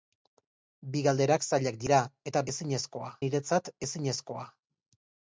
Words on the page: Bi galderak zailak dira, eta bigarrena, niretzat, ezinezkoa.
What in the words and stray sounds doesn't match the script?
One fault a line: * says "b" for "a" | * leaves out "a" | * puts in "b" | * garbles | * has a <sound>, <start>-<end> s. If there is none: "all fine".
* says "ezinezkoa" for "bigarrena"